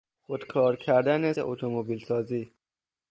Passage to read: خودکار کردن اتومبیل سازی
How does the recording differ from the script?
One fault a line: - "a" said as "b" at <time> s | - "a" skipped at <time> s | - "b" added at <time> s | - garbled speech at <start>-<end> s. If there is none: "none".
none